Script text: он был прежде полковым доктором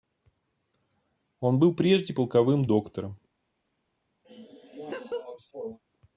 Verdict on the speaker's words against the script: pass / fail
pass